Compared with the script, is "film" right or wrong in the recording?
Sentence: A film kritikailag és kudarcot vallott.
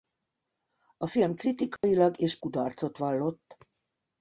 right